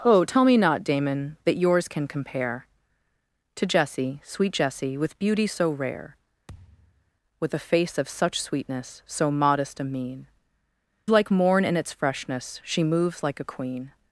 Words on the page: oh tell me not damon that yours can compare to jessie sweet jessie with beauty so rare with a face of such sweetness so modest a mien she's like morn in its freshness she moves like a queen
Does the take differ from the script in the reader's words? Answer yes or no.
yes